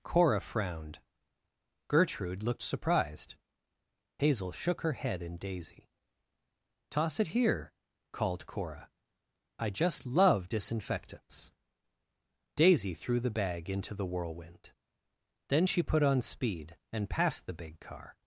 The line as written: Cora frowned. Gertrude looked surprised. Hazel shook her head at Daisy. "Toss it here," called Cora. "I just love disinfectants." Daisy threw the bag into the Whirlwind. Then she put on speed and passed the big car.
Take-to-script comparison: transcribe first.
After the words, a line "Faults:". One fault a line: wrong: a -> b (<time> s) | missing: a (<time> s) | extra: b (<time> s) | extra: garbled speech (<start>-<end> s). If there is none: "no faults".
Cora frowned. Gertrude looked surprised. Hazel shook her head in Daisy. "Toss it here," called Cora. "I just love disinfectants." Daisy threw the bag into the Whirlwind. Then she put on speed and passed the big car.
Faults:
wrong: at -> in (5.2 s)